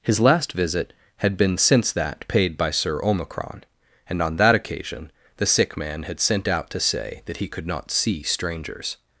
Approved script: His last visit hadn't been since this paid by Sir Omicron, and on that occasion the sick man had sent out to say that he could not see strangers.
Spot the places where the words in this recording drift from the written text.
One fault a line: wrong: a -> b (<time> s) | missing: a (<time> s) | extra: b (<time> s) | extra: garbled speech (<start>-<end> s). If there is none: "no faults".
wrong: hadn't -> had (1.2 s)
wrong: this -> that (1.9 s)